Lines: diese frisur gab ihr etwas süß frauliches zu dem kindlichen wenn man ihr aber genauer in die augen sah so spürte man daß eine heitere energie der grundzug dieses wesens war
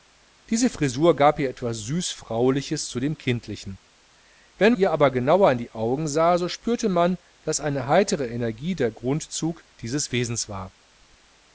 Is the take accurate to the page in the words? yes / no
no